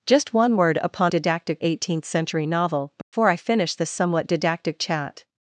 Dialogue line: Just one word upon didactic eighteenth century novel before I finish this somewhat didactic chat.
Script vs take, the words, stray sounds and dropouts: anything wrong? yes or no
yes